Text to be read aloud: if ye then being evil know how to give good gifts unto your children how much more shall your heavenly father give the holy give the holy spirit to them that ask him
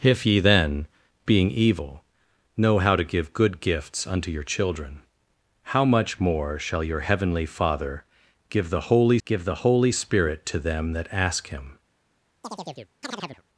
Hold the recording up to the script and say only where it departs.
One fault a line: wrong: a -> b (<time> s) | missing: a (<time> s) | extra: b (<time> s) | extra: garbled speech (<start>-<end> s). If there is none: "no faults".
no faults